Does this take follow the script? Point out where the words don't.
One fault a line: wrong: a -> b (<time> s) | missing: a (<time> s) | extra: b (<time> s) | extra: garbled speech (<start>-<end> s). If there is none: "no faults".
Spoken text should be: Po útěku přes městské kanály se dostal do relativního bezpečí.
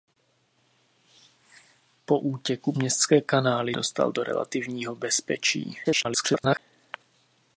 missing: přes (2.7 s)
missing: se (3.8 s)
extra: garbled speech (5.8-6.6 s)